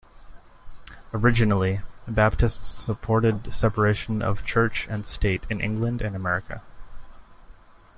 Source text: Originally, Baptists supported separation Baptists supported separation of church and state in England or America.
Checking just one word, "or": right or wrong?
wrong